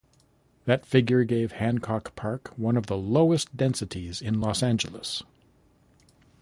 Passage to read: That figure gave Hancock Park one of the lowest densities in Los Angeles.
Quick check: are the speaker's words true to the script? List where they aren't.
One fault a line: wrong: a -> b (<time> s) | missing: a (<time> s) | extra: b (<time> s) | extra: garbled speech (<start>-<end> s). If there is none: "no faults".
no faults